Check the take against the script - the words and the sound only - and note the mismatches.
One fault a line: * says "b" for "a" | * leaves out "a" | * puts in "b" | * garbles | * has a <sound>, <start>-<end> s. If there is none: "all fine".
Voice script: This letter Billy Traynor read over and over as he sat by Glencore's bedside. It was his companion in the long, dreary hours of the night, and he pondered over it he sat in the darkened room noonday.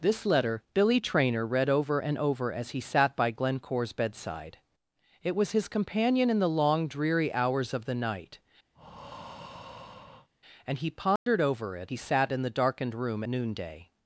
* has a breath, 8.7-10.3 s
* has a dropout, 11.2-11.3 s